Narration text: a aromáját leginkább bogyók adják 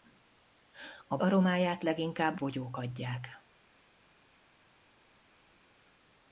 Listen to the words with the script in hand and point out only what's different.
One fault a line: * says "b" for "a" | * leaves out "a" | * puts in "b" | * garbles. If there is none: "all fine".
all fine